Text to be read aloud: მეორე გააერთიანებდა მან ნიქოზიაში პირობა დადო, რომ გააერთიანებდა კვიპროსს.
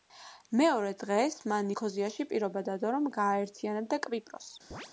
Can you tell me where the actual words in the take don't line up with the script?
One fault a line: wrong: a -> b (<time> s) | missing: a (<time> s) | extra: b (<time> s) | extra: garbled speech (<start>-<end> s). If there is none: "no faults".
wrong: გააერთიანებდა -> დღეს (1.0 s)